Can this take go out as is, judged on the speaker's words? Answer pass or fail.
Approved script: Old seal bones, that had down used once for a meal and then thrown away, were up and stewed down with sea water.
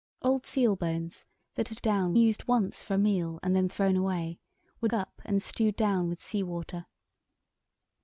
pass